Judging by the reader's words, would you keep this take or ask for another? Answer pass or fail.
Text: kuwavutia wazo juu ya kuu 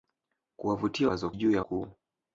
pass